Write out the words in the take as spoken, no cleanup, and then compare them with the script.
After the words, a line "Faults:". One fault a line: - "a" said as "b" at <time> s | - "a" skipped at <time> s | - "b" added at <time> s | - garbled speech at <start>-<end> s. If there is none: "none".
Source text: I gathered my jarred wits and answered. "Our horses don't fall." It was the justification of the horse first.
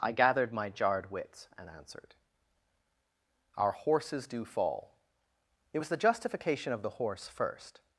I gathered my jarred wits and answered. "Our horses do fall." It was the justification of the horse first.
Faults:
- "don't" said as "do" at 4.3 s